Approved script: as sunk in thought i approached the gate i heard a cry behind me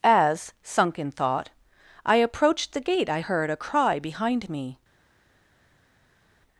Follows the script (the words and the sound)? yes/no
yes